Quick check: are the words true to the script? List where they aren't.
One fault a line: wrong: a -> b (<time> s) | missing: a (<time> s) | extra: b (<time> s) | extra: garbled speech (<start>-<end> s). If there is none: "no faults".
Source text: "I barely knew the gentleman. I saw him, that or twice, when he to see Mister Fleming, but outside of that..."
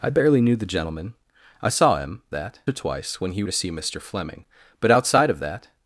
no faults